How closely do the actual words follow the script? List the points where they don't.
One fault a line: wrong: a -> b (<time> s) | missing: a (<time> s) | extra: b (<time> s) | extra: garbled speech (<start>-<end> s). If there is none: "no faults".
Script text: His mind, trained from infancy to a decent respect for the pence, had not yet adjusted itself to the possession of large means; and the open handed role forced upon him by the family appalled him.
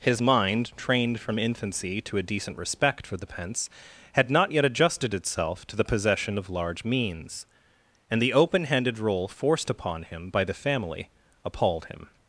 no faults